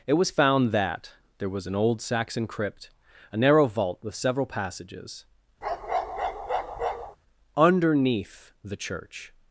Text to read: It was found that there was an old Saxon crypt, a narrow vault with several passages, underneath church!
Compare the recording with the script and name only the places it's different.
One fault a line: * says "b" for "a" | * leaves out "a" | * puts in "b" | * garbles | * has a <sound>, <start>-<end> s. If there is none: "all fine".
* has a bark, 5.6-7.2 s
* puts in "the"